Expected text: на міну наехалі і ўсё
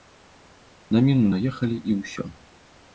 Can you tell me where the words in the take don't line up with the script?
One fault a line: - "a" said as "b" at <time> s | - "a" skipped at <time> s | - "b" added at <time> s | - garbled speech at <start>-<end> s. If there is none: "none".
none